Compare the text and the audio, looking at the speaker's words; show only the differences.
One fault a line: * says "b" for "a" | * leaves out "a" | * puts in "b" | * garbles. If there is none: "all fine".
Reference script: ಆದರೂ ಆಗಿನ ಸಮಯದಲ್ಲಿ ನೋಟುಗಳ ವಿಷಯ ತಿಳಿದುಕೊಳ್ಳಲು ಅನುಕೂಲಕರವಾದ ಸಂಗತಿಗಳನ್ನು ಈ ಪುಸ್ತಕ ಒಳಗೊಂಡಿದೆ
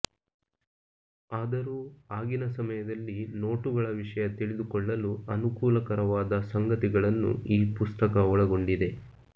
all fine